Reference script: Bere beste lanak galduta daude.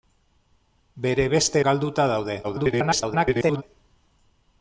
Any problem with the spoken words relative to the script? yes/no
yes